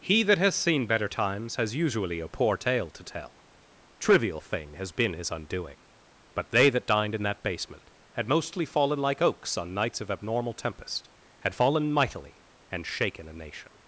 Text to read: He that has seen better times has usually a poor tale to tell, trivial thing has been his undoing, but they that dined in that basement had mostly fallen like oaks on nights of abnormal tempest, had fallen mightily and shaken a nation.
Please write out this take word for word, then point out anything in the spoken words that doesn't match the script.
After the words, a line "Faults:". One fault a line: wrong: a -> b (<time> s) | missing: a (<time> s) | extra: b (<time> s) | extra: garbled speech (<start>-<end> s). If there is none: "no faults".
He that has seen better times has usually a poor tale to tell, trivial thing has been his undoing, but they that dined in that basement had mostly fallen like oaks on nights of abnormal tempest, had fallen mightily and shaken a nation.
Faults:
no faults